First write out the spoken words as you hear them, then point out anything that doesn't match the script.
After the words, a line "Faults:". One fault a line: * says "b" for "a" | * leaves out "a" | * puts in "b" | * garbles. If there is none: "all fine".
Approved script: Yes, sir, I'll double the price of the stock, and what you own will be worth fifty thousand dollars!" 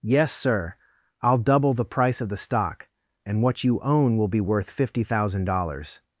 Yes, sir, I'll double the price of the stock, and what you own will be worth fifty thousand dollars!"
Faults:
all fine